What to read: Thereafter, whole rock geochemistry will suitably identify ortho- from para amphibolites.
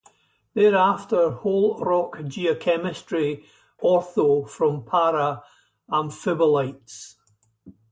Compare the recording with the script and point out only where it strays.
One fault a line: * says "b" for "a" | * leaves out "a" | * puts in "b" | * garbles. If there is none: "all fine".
* leaves out "will suitably identify"